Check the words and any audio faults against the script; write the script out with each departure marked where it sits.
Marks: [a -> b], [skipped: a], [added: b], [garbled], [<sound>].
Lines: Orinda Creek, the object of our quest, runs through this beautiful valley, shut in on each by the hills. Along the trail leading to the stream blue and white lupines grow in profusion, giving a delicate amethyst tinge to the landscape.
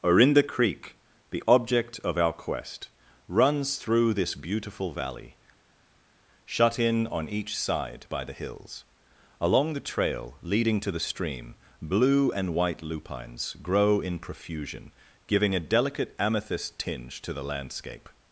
Orinda Creek, the object of our quest, runs through this beautiful valley, shut in on each [added: side] by the hills. Along the trail leading to the stream blue and white lupines grow in profusion, giving a delicate amethyst tinge to the landscape.